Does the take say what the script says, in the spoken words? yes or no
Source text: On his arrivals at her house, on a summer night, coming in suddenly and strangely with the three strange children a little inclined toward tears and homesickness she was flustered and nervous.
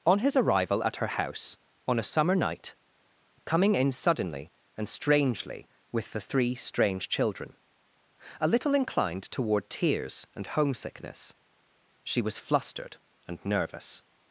no